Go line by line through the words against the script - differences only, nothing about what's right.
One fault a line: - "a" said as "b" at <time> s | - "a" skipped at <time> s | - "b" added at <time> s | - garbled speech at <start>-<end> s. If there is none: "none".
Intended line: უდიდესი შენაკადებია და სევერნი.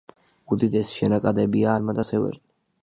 - "ალმა" added at 1.8 s